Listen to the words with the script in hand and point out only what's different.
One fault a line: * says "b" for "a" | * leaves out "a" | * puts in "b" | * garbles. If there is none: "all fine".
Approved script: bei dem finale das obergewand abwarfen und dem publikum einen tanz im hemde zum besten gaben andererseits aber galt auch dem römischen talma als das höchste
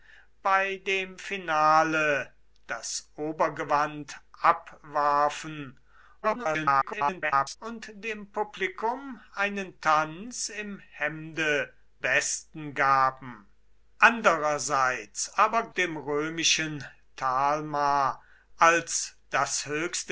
* garbles
* leaves out "zum"
* leaves out "galt auch"